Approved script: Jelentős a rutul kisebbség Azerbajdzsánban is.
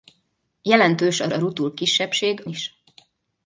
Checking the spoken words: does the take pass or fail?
fail